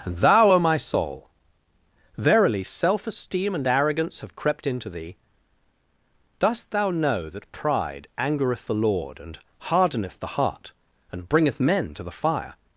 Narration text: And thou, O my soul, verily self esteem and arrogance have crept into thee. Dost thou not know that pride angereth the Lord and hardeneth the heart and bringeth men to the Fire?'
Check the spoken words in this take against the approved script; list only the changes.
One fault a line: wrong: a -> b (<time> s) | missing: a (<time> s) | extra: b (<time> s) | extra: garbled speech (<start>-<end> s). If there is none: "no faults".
missing: not (6.9 s)